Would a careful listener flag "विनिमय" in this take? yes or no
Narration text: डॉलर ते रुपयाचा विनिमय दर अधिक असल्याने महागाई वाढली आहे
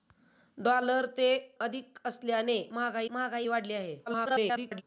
yes